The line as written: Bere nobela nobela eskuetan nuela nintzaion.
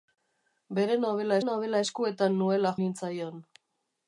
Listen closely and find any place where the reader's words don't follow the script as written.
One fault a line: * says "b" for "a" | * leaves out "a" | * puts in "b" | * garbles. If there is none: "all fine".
all fine